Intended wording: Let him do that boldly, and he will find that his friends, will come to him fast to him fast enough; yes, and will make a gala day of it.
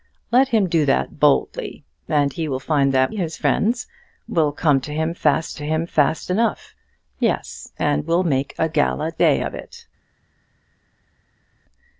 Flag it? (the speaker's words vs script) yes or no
no